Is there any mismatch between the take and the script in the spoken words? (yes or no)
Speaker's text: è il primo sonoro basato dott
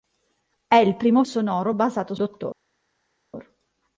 no